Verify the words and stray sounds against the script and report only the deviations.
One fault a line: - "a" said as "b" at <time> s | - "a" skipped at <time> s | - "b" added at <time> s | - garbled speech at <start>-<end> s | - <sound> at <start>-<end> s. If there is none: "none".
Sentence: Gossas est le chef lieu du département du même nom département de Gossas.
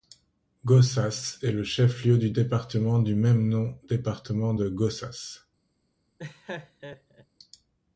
- laugh at 6.2-7.3 s